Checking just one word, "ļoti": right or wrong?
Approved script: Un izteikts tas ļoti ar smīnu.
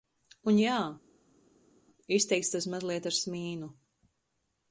wrong